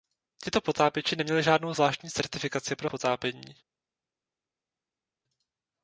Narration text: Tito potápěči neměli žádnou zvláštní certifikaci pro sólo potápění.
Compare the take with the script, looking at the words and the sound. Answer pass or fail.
fail